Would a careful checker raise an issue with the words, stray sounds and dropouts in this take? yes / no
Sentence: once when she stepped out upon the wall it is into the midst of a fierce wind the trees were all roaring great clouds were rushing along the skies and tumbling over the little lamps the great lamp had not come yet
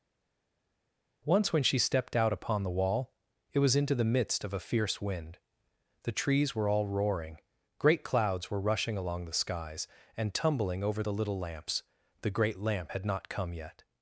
yes